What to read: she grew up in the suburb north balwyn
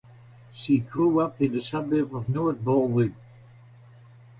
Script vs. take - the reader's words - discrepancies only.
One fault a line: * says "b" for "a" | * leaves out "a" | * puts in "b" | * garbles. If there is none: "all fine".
* puts in "of"